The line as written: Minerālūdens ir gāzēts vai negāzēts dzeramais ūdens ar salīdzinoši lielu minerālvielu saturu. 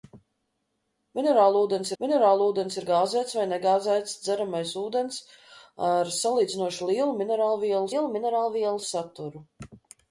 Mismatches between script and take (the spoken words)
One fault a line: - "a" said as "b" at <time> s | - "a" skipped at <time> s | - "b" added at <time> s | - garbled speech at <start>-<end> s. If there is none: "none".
- "minerālūdens" added at 2.0 s
- "lielu minerālvielu" added at 7.9 s